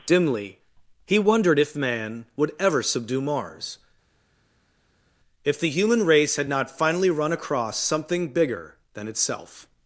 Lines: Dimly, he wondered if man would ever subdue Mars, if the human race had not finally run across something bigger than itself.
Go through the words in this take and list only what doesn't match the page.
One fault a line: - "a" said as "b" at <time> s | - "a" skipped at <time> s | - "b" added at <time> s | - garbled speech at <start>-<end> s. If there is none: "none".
none